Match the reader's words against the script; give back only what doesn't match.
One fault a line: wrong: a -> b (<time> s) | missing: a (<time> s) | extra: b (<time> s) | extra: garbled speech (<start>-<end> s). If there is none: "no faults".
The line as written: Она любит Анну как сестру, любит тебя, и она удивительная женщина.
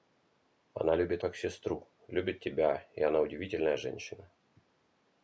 missing: Анну (1.2 s)